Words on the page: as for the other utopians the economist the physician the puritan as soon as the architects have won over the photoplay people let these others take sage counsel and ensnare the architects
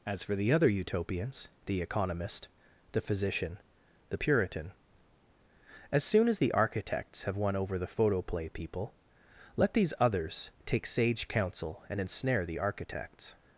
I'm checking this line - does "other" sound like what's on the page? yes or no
yes